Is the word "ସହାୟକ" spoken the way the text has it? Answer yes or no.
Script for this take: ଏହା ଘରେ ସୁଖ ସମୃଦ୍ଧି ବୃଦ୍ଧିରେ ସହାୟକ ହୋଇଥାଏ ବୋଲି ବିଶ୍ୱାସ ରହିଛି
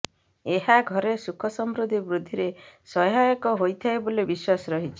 yes